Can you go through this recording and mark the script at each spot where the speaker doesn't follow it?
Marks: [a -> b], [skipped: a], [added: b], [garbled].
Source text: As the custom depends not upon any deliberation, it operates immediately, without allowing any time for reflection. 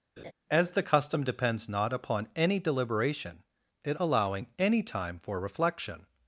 As the custom depends not upon any deliberation, it [skipped: operates immediately, without] allowing any time for reflection.